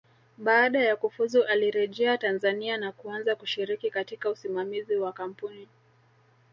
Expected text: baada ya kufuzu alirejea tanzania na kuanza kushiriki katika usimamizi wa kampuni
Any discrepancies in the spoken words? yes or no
no